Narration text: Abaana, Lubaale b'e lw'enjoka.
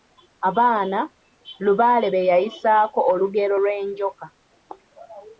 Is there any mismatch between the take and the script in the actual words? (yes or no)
yes